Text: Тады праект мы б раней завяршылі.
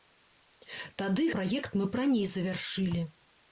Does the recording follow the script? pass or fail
pass